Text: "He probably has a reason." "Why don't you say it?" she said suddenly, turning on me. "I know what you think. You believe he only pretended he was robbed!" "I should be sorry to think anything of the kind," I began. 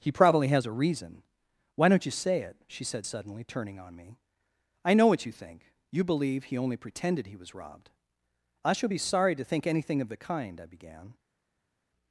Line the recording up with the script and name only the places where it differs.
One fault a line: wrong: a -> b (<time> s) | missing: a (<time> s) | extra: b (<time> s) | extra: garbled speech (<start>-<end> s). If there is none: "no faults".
wrong: should -> shall (8.7 s)